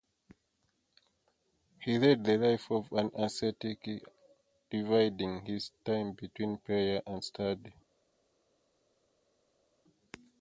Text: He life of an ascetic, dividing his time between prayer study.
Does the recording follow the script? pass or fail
fail